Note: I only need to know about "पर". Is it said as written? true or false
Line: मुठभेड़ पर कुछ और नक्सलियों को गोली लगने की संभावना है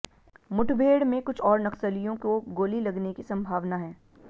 false